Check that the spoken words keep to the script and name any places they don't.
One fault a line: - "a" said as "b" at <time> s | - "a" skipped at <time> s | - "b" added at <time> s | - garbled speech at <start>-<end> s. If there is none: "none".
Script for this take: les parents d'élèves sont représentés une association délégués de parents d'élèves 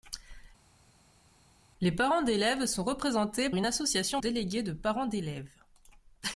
none